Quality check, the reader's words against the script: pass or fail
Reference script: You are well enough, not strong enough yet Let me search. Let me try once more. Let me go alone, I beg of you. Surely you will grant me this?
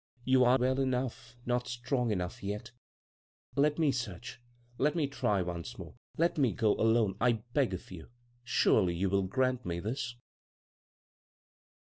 pass